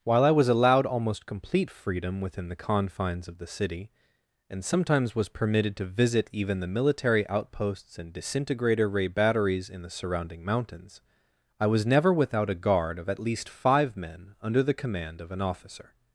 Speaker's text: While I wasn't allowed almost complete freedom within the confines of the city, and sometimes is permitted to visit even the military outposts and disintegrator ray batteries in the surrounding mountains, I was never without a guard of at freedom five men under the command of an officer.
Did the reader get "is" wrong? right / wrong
wrong